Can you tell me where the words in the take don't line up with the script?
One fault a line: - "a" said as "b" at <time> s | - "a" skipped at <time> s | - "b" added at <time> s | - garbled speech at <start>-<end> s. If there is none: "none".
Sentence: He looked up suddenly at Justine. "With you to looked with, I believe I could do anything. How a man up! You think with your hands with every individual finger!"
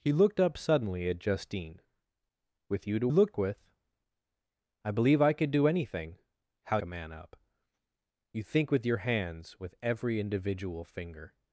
none